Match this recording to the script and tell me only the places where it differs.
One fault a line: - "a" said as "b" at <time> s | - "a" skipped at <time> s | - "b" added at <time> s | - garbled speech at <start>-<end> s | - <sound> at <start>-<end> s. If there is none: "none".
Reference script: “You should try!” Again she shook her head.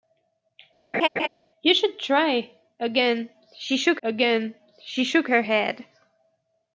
- laugh at 0.9-1.3 s
- "again she shook" added at 4.0 s